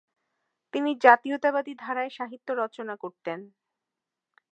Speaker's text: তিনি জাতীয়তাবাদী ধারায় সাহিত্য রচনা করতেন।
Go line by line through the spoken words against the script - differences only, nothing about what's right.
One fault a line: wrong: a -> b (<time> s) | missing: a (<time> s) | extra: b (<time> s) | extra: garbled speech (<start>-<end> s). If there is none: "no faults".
no faults